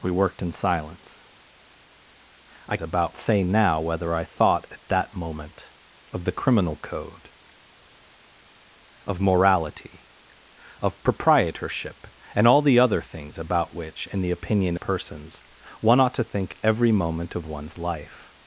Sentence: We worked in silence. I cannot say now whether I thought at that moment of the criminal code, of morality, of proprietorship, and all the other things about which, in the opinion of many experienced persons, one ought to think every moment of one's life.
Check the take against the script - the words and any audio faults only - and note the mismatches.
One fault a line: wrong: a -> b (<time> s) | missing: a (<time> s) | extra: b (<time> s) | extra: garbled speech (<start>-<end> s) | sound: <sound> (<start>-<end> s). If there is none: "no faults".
wrong: cannot -> about (2.8 s)
missing: of many experienced (14.8 s)